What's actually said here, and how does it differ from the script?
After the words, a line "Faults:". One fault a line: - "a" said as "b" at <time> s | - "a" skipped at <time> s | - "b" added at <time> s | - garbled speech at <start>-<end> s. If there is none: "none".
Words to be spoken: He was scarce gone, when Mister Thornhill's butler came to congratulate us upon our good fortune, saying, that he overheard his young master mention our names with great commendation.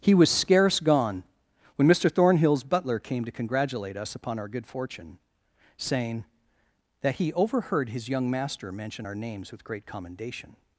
He was scarce gone, when Mister Thornhill's butler came to congratulate us upon our good fortune, saying, that he overheard his young master mention our names with great commendation.
Faults:
none